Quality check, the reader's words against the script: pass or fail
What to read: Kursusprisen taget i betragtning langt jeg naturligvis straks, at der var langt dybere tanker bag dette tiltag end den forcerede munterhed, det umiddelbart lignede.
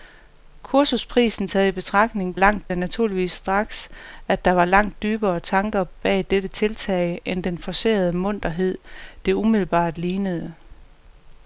pass